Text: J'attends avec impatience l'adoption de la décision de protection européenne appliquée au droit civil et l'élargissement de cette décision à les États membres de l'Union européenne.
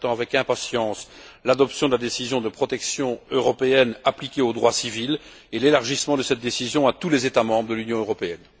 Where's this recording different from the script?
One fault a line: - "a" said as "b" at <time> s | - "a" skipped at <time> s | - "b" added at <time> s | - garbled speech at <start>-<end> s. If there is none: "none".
- "tous" added at 6.9 s